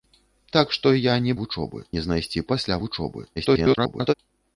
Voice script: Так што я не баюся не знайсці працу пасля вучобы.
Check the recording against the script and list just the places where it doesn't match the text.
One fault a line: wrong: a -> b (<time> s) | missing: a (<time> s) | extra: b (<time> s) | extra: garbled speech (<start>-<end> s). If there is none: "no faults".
wrong: баюся -> вучобы (1.4 s)
missing: працу (2.5 s)
extra: garbled speech (3.4-4.1 s)